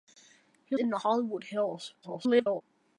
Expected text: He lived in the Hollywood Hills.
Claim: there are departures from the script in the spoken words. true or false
true